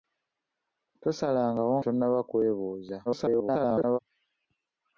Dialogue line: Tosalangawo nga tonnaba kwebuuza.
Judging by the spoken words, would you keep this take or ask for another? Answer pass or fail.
fail